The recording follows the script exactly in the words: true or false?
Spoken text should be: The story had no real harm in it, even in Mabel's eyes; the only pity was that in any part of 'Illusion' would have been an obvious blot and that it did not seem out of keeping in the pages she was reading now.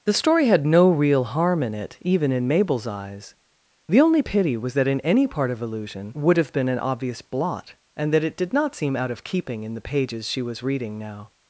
true